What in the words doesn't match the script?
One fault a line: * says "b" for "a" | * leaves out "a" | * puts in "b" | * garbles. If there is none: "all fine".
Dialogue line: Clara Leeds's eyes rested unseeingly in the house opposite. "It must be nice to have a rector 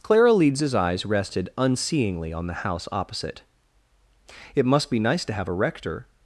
* says "on" for "in"